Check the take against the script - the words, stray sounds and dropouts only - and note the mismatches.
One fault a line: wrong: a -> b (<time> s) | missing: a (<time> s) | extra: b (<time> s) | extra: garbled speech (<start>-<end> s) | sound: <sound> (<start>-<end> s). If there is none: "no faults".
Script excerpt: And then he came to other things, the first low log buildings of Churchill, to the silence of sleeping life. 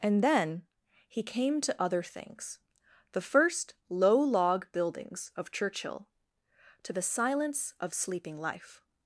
no faults